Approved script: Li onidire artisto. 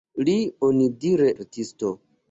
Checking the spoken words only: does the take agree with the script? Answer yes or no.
yes